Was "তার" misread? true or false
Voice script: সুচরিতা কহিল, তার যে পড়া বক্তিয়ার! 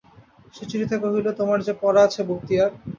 true